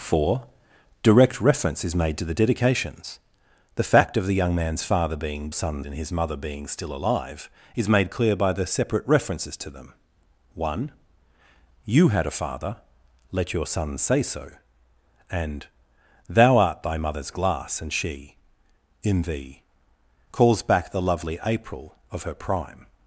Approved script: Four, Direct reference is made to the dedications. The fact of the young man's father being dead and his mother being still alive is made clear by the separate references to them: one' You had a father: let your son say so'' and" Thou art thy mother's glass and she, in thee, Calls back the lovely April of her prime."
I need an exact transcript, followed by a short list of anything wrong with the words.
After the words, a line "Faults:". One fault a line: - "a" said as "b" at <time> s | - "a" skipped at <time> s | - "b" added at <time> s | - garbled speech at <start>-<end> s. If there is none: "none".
Four, Direct reference is made to the dedications. The fact of the young man's father being son and his mother being still alive is made clear by the separate references to them: one' You had a father: let your son say so'' and" Thou art thy mother's glass and she, in thee, Calls back the lovely April of her prime."
Faults:
- "dead" said as "son" at 5.5 s